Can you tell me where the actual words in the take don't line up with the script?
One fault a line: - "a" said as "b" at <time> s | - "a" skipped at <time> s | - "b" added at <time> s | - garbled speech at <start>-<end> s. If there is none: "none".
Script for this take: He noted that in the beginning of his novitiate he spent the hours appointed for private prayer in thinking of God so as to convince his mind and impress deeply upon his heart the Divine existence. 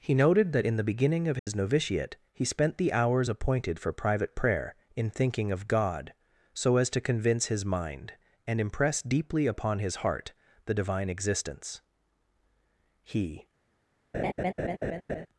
- "He" added at 13.0 s